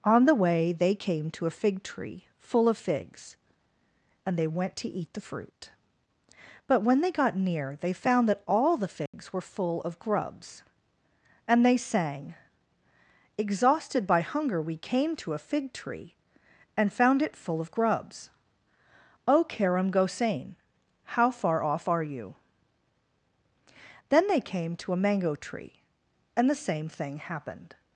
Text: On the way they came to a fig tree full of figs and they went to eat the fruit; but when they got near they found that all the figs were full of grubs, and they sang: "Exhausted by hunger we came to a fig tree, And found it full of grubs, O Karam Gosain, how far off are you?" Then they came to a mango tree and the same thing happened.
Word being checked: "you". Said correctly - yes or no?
yes